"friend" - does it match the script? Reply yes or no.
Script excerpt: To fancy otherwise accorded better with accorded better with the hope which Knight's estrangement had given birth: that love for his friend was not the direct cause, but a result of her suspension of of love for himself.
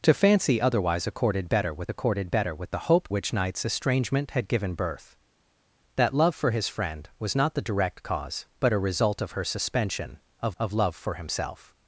yes